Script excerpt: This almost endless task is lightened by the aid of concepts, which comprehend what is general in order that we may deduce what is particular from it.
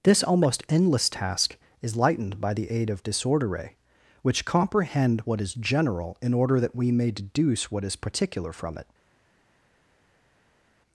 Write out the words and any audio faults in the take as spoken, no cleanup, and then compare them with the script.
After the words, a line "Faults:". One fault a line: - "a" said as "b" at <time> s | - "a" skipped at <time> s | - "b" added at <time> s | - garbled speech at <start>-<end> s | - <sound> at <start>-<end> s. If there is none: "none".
This almost endless task is lightened by the aid of disordere, which comprehend what is general in order that we may deduce what is particular from it.
Faults:
- "concepts" said as "disordere" at 3.0 s